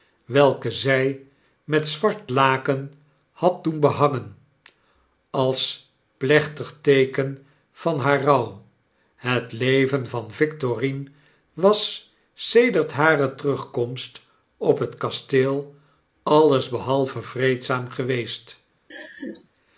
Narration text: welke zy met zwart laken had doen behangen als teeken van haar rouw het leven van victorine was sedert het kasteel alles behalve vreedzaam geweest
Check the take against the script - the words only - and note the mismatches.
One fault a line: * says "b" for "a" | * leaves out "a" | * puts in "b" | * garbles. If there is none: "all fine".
* puts in "plechtig"
* puts in "hare terugkomst op"